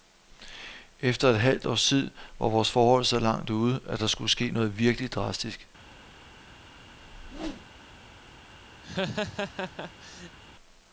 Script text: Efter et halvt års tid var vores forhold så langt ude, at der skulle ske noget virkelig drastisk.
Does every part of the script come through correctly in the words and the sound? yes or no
no